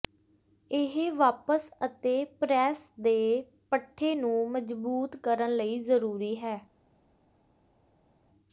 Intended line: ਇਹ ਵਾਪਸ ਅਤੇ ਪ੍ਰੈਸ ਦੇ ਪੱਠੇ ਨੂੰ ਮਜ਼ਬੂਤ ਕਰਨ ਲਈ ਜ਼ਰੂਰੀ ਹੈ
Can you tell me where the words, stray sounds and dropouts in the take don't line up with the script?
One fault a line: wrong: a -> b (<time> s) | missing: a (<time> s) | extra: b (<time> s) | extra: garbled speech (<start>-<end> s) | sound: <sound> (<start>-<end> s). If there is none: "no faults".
no faults